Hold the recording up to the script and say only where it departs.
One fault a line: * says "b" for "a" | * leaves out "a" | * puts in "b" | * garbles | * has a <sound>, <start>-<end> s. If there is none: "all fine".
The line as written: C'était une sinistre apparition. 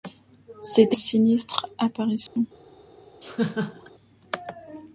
* leaves out "une"
* has a dropout, 2.3-2.4 s
* has a laugh, 3.2-3.9 s